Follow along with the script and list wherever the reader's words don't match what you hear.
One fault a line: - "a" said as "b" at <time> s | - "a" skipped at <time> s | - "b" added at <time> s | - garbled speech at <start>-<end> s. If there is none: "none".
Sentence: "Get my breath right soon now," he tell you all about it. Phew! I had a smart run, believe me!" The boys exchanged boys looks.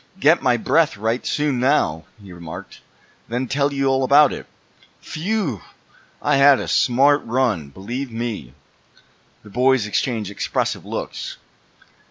- "remarked then" added at 2.3 s
- "boys" said as "expressive" at 10.3 s